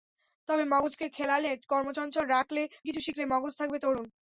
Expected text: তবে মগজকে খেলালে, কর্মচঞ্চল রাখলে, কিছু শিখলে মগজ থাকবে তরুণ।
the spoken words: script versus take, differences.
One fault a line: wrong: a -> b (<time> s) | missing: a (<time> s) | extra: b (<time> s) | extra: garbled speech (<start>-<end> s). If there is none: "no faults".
no faults